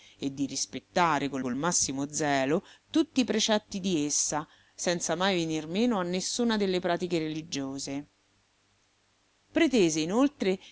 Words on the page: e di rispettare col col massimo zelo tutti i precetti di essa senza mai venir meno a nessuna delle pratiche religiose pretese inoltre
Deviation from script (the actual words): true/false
false